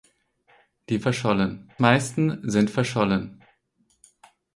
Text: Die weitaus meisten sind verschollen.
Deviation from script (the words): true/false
true